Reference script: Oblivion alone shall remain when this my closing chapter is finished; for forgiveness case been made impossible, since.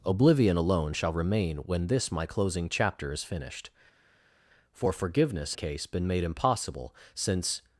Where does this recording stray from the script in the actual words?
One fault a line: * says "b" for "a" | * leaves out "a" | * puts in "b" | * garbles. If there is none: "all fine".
all fine